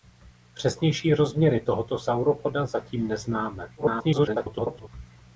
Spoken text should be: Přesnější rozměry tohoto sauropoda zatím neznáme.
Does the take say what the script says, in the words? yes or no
no